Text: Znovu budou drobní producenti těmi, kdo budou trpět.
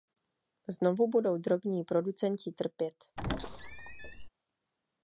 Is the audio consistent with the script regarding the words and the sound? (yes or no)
no